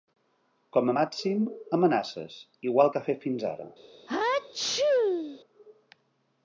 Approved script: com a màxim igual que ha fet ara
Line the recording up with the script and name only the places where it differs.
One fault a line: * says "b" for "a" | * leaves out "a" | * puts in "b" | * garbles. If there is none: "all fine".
* puts in "amenaces"
* puts in "fins"